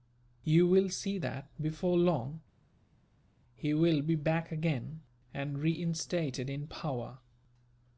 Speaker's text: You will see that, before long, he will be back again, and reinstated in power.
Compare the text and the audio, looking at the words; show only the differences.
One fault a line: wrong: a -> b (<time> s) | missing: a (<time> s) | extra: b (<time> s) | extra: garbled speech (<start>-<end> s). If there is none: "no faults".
no faults